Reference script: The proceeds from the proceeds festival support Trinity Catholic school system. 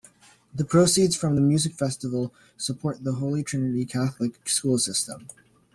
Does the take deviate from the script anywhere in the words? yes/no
yes